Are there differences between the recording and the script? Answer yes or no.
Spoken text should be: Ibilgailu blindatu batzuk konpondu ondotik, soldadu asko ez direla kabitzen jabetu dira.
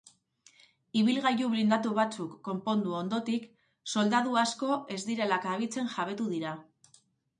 no